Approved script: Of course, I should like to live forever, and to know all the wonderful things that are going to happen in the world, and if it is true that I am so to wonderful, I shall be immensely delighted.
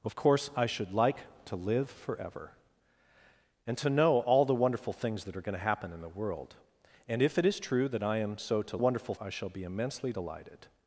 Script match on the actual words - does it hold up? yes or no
yes